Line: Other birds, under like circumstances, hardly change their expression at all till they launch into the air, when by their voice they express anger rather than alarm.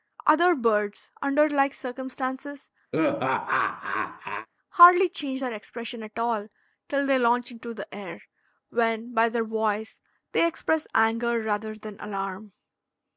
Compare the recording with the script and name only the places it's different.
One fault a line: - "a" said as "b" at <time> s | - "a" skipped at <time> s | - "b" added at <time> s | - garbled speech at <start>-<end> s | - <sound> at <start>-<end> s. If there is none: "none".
- laugh at 2.9-4.5 s